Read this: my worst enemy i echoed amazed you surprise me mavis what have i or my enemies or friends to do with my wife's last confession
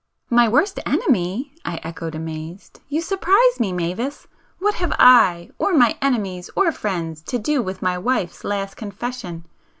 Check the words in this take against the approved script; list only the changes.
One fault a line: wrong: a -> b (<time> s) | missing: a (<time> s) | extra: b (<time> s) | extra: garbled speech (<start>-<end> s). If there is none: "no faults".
no faults